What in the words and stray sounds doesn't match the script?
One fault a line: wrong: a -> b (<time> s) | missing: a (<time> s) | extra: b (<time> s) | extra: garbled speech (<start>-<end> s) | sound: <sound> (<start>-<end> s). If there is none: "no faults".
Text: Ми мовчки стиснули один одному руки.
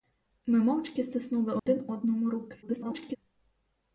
sound: dropout (1.6-1.7 s)
extra: garbled speech (2.6-3.2 s)